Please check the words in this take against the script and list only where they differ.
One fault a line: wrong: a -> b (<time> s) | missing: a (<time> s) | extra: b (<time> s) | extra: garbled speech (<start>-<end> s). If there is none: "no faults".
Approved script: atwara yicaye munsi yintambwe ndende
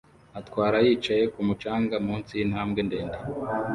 extra: kumu canga (1.3 s)